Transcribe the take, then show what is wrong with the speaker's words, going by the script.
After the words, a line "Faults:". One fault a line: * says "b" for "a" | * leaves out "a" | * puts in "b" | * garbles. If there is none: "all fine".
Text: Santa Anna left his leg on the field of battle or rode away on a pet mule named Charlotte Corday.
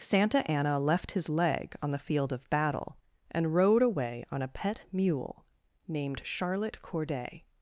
Santa Anna left his leg on the field of battle and rode away on a pet mule named Charlotte Corday.
Faults:
* says "and" for "or"